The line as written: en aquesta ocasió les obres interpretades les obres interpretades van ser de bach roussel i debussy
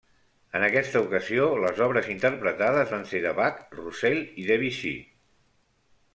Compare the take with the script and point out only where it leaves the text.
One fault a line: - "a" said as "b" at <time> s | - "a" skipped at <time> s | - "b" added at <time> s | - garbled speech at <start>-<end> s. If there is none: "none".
- "les obres interpretades" skipped at 3.0 s